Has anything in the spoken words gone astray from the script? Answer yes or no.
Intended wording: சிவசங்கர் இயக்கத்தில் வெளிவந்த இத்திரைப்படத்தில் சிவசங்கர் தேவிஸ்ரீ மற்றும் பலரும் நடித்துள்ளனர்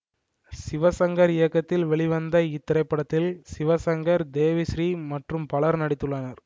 no